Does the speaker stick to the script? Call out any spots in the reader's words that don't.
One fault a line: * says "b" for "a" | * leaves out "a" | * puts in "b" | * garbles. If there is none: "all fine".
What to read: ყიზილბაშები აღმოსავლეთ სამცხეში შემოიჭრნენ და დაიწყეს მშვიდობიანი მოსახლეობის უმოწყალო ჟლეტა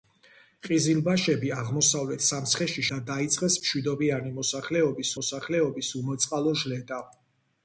* leaves out "შემოიჭრნენ"
* puts in "მოსახლეობის"